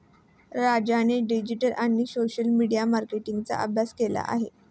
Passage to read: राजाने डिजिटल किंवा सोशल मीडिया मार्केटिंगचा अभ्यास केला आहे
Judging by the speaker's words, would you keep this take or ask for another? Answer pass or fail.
fail